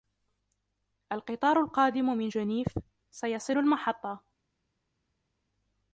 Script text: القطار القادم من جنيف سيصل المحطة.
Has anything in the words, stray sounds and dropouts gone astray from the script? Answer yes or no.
no